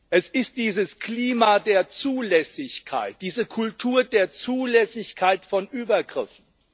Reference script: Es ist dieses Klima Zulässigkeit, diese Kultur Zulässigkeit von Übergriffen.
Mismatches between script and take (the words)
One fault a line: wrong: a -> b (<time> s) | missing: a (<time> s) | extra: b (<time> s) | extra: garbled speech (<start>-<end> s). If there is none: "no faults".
extra: der (1.6 s)
extra: der (4.0 s)